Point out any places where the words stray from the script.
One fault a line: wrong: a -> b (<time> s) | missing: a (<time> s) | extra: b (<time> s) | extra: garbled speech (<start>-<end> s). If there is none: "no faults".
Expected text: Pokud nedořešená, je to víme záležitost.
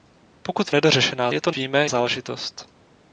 no faults